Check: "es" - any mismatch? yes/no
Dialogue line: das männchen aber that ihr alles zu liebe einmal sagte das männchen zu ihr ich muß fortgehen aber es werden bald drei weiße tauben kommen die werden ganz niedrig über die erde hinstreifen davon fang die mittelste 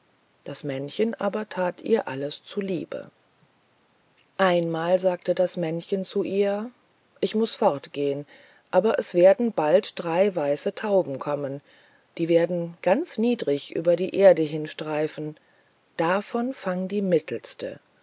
no